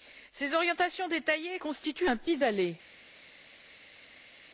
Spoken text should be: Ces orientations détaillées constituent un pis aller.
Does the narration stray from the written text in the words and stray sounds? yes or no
no